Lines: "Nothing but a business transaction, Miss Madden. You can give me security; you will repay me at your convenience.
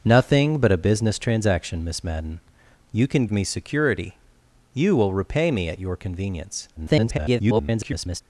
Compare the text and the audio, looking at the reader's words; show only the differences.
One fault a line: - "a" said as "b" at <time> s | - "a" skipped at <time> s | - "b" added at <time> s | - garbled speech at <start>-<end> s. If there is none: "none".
- "give" skipped at 3.3 s
- garbled speech at 6.8-8.2 s